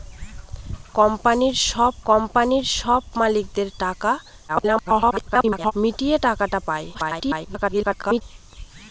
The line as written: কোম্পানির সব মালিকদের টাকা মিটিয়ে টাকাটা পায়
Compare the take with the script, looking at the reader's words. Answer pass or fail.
fail